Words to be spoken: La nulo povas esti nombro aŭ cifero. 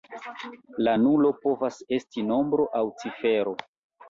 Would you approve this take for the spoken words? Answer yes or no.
yes